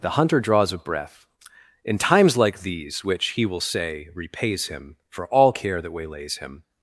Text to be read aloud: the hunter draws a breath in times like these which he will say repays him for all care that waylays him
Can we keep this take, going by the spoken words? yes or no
yes